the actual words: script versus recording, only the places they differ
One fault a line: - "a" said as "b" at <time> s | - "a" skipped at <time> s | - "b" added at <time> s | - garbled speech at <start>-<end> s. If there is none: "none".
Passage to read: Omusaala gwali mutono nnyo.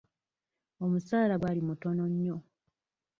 none